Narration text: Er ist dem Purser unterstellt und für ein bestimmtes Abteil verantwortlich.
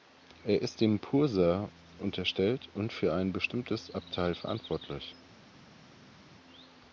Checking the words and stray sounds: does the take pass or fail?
pass